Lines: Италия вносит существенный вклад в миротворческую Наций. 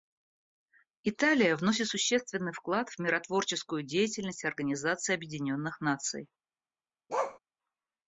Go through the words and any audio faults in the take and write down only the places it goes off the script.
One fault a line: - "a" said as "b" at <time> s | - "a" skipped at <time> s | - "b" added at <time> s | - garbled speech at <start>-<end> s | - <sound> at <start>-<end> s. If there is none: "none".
- "деятельность Организации Объединенных" added at 3.8 s
- bark at 7.1-7.4 s